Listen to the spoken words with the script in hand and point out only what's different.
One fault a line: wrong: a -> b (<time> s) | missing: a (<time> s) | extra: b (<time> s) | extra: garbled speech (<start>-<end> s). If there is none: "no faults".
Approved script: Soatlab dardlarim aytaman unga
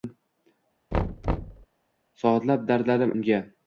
missing: aytaman (3.1 s)